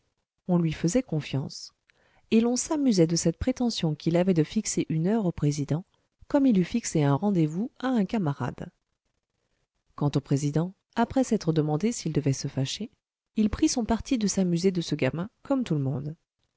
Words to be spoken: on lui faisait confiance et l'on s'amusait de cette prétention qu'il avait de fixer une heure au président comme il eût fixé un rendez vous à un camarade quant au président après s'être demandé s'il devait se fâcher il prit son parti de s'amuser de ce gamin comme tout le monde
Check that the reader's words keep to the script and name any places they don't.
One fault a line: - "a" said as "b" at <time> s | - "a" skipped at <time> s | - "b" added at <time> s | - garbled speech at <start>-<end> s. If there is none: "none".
none